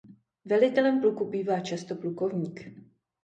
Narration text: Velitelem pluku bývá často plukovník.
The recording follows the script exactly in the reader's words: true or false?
true